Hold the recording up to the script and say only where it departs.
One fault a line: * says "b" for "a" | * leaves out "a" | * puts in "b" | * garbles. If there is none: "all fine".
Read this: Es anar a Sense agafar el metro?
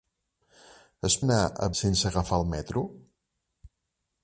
all fine